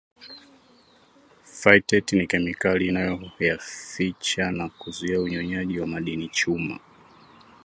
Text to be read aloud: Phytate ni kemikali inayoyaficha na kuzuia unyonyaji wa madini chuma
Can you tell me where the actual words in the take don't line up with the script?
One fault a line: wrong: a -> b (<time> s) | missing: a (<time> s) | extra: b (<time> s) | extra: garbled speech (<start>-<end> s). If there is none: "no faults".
no faults